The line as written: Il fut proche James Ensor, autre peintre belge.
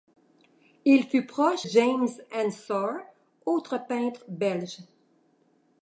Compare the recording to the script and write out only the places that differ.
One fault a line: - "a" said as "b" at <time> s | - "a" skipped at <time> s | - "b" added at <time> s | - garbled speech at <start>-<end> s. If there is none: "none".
none